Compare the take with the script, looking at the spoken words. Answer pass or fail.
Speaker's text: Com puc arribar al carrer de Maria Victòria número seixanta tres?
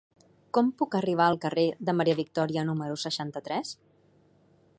pass